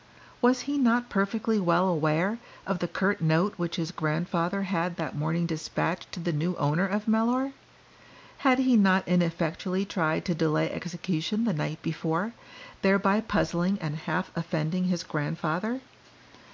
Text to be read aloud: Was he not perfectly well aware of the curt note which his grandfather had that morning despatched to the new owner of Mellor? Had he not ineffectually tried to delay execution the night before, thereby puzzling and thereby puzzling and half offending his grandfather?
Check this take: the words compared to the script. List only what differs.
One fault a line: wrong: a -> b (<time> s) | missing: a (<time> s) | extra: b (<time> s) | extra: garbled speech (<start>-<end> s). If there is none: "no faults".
missing: thereby puzzling and (14.0 s)